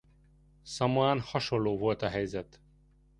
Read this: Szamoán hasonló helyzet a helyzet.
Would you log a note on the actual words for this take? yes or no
yes